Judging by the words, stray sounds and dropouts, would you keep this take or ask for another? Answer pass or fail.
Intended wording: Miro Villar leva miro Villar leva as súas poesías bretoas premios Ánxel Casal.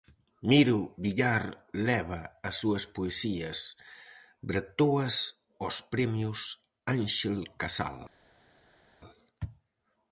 fail